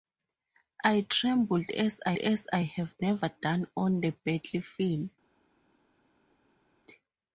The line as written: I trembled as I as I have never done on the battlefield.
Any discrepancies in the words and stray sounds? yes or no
no